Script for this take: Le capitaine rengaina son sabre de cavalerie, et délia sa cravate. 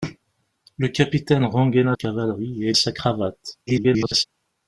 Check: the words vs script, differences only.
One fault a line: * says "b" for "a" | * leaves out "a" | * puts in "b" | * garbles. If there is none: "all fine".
* leaves out "son sabre de"
* leaves out "délia"
* garbles